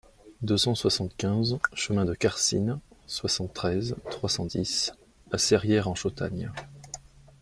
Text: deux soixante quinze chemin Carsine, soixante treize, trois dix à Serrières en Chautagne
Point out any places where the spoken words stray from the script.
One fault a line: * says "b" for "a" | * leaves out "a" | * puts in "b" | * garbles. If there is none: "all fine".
* puts in "cent"
* puts in "de"
* puts in "cent"